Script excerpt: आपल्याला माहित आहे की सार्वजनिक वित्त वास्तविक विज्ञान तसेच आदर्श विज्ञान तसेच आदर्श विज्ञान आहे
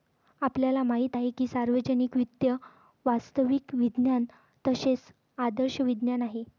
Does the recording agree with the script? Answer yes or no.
no